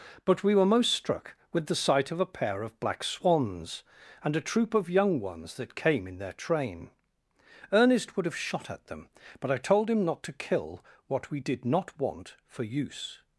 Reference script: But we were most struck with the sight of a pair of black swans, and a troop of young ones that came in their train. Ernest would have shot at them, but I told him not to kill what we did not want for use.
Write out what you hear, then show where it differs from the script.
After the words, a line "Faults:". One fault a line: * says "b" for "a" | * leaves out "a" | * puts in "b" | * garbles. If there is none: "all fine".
But we were most struck with the sight of a pair of black swans, and a troop of young ones that came in their train. Ernest would have shot at them, but I told him not to kill what we did not want for use.
Faults:
all fine